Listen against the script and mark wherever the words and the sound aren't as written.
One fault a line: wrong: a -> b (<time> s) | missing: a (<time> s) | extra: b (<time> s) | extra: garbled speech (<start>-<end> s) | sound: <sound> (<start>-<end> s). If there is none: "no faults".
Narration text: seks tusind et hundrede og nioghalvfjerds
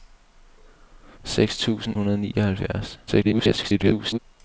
missing: et (1.9 s)
extra: garbled speech (3.1-4.2 s)